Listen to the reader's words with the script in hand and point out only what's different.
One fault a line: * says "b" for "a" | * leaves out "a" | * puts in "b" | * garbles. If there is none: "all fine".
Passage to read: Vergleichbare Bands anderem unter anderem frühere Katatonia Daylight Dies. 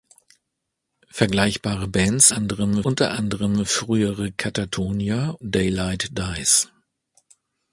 all fine